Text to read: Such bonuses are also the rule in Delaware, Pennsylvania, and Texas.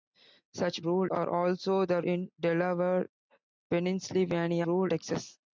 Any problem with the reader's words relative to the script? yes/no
yes